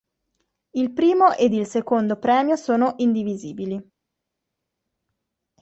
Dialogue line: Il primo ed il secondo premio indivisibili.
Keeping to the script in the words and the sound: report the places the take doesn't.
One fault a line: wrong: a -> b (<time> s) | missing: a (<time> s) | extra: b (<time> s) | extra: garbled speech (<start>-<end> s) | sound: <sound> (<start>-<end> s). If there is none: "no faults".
extra: sono (2.6 s)